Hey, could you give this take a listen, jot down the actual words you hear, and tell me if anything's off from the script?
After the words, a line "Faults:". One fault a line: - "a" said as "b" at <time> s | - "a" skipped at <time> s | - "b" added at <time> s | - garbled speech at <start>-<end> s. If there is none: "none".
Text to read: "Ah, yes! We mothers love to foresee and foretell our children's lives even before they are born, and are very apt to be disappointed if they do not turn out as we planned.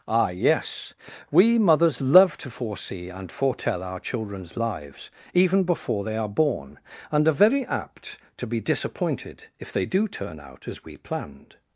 "Ah, yes! We mothers love to foresee and foretell our children's lives even before they are born, and are very apt to be disappointed if they do turn out as we planned.
Faults:
- "not" skipped at 10.1 s